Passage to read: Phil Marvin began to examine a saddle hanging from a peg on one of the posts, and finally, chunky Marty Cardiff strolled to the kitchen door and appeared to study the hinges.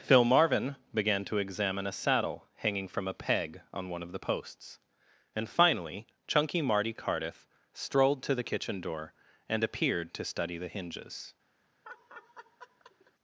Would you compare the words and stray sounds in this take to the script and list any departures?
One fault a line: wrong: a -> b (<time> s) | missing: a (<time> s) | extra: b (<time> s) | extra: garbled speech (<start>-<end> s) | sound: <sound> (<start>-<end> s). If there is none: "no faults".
sound: laugh (11.8-13.1 s)